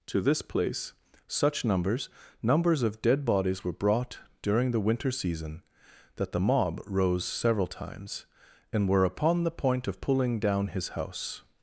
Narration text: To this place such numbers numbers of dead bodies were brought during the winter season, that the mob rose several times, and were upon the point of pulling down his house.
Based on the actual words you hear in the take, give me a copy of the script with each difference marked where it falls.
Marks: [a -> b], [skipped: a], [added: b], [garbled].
To this place such numbers numbers of dead bodies were brought during the winter season, that the mob rose several times, and were upon the point of pulling down his house.